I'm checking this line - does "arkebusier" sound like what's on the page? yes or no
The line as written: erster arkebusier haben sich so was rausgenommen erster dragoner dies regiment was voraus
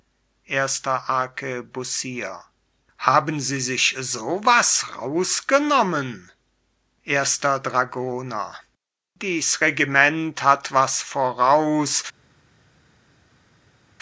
yes